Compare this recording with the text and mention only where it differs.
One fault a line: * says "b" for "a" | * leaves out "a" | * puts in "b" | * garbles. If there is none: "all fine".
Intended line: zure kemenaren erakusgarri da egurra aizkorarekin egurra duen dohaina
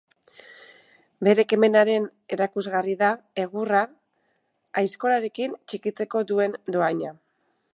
* says "bere" for "zure"
* says "txikitzeko" for "egurra"